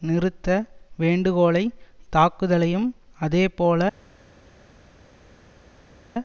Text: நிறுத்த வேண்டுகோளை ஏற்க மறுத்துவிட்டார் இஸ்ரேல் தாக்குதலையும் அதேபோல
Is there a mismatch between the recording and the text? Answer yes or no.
yes